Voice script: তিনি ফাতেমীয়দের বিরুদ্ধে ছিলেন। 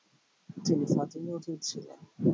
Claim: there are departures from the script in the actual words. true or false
true